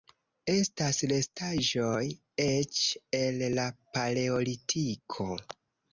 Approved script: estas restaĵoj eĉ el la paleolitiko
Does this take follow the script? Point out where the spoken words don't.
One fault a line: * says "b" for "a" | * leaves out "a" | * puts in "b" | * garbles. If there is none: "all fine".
all fine